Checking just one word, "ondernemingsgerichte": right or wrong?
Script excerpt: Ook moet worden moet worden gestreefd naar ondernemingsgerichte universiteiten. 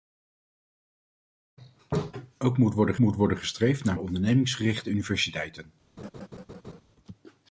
right